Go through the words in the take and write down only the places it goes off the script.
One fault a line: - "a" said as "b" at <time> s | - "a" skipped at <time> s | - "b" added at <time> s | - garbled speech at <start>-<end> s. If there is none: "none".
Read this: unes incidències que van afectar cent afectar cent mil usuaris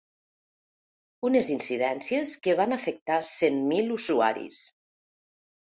- "afectar cent" skipped at 3.6 s